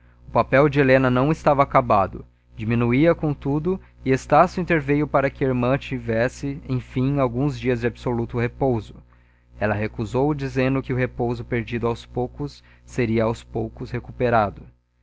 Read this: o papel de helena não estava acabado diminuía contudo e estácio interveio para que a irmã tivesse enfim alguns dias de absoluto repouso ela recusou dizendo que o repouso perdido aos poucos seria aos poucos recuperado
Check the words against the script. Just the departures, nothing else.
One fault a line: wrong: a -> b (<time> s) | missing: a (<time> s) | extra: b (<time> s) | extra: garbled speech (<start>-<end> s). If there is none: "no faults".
no faults